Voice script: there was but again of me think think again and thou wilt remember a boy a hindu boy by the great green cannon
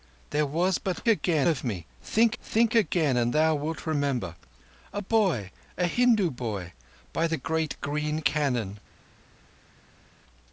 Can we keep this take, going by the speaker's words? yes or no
yes